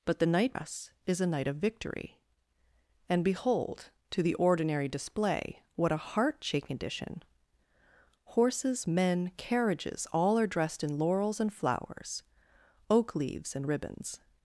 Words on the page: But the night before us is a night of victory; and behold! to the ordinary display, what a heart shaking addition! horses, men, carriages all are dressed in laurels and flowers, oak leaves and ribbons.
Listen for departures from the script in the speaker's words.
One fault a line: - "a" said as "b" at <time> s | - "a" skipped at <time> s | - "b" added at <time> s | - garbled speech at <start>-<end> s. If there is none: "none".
- "before" skipped at 0.6 s